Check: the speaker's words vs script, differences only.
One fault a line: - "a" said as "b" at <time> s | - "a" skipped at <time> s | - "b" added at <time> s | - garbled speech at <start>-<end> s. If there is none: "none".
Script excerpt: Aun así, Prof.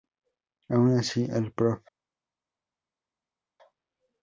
- "el" added at 1.3 s